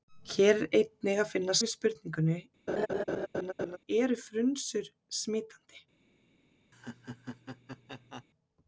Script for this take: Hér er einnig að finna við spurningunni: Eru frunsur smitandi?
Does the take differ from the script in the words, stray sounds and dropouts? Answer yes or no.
yes